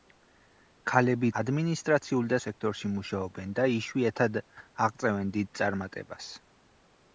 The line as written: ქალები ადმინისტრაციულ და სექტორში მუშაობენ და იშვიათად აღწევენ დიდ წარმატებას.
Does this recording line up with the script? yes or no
yes